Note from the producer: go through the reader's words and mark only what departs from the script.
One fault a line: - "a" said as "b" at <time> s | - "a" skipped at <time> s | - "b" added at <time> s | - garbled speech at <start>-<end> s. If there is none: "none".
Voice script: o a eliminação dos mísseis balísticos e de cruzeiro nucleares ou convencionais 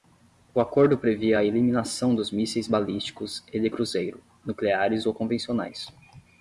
- "acordo previa" added at 0.6 s